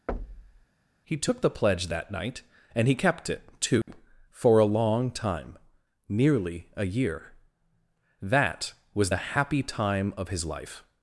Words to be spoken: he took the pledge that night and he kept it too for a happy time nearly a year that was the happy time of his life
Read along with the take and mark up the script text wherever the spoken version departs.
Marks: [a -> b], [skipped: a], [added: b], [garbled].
he took the pledge that night and he kept it too for a [happy -> long] time nearly a year that was the happy time of his life